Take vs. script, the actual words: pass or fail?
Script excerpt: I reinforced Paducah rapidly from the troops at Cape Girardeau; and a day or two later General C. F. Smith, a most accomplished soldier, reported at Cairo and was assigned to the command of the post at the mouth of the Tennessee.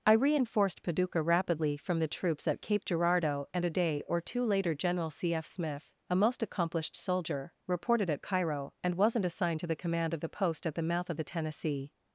fail